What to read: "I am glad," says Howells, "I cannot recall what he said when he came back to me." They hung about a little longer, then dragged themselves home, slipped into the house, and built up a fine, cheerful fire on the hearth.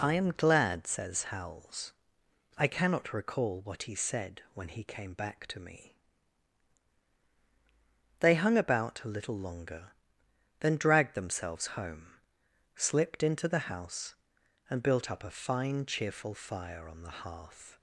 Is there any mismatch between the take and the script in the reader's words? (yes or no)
no